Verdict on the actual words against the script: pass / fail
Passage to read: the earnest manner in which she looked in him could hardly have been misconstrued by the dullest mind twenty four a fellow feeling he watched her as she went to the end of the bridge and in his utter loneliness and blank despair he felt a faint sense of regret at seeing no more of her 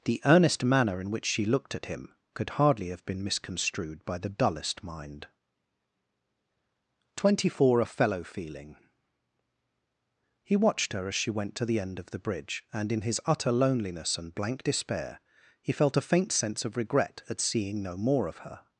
fail